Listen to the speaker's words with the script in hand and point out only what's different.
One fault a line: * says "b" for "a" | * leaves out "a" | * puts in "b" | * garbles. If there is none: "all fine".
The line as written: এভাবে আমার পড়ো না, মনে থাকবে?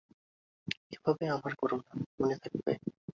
all fine